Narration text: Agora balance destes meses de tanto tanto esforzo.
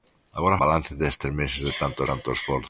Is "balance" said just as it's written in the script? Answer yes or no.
yes